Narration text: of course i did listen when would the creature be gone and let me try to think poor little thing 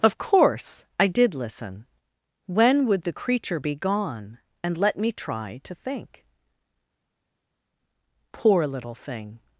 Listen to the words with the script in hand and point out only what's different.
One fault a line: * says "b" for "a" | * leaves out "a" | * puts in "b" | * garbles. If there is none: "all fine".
all fine